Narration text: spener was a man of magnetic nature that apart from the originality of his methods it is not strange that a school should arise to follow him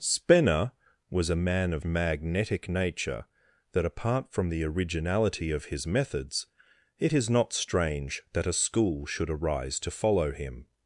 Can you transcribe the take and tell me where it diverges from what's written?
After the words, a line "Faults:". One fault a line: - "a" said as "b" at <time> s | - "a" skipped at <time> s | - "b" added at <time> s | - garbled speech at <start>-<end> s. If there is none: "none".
spener was a man of magnetic nature that apart from the originality of his methods it is not strange that a school should arise to follow him
Faults:
none